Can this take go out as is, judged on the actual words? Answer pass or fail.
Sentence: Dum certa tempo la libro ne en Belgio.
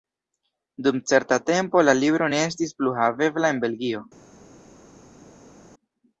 fail